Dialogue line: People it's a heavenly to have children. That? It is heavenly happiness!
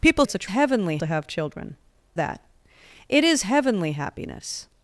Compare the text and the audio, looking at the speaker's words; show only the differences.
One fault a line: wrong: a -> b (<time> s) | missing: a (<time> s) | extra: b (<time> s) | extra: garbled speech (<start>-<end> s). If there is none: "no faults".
no faults